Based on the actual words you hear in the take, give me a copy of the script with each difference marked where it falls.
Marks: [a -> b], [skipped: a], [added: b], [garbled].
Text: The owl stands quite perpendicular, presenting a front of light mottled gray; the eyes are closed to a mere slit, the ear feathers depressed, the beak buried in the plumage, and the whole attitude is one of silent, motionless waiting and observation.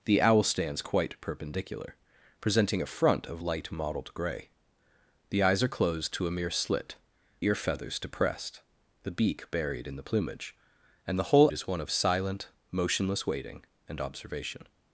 The owl stands quite perpendicular, presenting a front of light mottled gray; the eyes are closed to a mere slit, [skipped: the] ear feathers depressed, the beak buried in the plumage, and the whole [skipped: attitude] is one of silent, motionless waiting and observation.